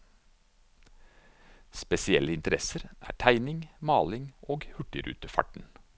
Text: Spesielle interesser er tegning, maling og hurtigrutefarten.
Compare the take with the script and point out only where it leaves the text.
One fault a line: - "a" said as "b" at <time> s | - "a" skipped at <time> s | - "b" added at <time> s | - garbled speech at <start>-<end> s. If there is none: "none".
none